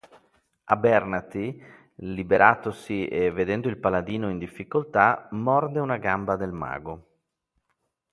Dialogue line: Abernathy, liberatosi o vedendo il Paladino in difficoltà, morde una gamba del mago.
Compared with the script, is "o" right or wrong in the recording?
wrong